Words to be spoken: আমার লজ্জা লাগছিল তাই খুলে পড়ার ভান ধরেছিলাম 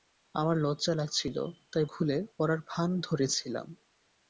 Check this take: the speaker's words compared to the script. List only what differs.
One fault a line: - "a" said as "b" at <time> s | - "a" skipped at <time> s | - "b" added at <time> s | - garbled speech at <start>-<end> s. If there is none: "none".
none